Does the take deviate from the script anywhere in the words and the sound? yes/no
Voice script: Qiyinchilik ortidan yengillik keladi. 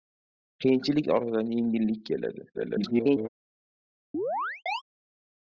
yes